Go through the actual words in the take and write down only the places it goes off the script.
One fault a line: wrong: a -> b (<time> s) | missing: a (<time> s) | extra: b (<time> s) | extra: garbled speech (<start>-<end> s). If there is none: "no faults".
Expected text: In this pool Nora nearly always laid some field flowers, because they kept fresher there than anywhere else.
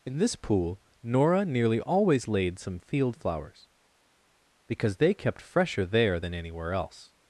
no faults